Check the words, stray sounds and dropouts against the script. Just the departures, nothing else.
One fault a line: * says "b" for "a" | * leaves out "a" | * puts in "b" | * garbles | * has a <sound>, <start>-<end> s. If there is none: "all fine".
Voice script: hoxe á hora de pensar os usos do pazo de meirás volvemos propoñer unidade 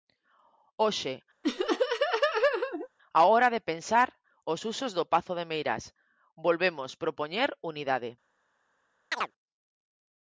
* has a laugh, 1.4-2.9 s
* has a chirp, 9.1-9.3 s